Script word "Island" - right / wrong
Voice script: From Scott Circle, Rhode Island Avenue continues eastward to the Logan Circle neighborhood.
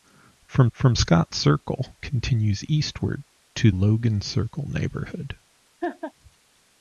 wrong